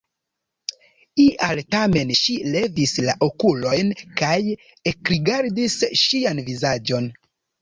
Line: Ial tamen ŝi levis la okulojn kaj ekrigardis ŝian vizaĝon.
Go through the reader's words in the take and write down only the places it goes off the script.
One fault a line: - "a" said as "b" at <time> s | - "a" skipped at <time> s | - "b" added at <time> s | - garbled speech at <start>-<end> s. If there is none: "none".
none